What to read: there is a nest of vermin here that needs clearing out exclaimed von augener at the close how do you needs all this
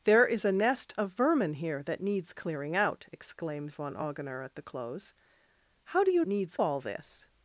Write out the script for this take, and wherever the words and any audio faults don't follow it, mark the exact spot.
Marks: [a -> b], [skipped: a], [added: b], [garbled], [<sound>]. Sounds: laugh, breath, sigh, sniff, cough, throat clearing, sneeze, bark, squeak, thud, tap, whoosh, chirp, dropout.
there is a nest of vermin here that needs clearing out exclaimed von augener at the close how do you needs all this